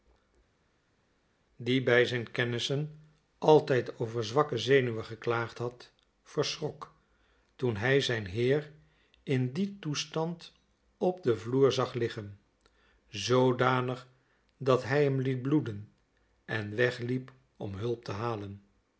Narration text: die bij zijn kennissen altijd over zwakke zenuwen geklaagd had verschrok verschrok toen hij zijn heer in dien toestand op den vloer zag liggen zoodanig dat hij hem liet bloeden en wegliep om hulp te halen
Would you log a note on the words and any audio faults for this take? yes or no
yes